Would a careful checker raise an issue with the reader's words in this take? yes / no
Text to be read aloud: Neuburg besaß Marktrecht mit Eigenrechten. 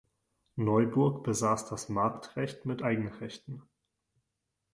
yes